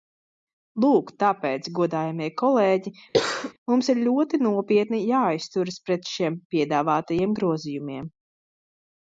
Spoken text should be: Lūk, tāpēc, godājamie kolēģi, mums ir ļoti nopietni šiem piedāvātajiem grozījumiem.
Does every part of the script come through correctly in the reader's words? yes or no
no